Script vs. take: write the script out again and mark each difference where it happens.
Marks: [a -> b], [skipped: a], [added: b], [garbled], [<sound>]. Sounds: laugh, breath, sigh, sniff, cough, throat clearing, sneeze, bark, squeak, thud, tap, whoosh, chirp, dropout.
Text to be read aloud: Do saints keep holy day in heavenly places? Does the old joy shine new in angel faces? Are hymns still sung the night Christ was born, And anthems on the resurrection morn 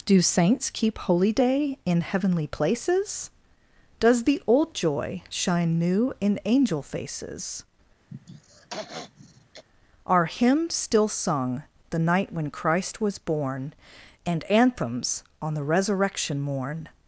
Do saints keep holy day in heavenly places? Does the old joy shine new in angel faces? [throat clearing] Are hymns still sung the night [added: when] Christ was born, And anthems on the resurrection morn